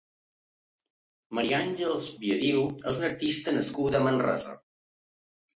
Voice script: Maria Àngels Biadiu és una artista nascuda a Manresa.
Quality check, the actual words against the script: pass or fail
pass